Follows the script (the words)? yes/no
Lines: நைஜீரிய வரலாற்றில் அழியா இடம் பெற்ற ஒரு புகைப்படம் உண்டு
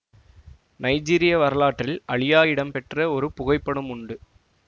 yes